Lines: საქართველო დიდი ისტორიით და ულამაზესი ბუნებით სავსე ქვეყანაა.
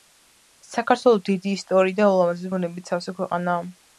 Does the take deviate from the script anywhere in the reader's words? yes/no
no